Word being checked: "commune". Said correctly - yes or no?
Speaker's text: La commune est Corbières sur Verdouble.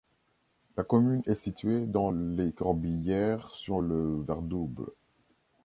yes